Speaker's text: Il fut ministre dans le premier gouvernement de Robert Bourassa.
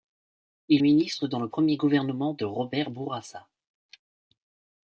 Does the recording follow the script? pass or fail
fail